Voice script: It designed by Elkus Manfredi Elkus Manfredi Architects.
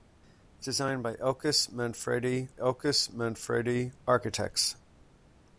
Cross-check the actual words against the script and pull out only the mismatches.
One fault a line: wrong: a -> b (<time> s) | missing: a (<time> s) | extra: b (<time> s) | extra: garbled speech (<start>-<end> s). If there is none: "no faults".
no faults